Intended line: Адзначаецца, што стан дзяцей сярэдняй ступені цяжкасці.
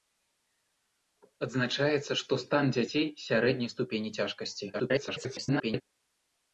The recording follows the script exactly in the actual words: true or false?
false